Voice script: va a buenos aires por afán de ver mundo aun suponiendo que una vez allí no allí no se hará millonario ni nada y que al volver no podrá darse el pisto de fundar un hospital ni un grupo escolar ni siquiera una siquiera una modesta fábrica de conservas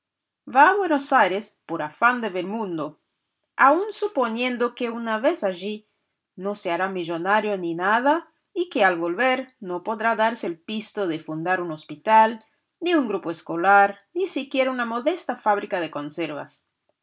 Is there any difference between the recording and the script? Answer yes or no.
yes